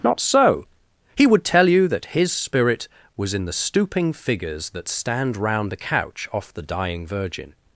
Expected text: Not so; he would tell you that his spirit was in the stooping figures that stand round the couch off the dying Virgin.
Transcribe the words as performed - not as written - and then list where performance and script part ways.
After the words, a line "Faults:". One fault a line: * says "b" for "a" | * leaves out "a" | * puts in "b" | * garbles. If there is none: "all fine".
Not so; he would tell you that his spirit was in the stooping figures that stand round the couch off the dying Virgin.
Faults:
all fine